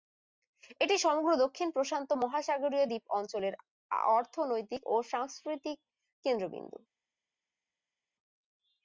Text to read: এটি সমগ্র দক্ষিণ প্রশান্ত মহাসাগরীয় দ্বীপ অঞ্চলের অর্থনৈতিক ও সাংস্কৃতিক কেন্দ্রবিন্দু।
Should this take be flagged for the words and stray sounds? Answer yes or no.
no